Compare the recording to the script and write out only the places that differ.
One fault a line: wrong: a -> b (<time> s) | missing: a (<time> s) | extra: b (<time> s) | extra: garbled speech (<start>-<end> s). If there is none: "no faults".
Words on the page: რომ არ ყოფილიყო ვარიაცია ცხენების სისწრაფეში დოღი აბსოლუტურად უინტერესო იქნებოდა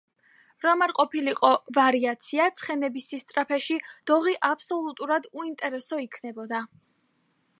no faults